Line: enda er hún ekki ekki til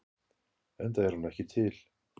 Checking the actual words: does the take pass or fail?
fail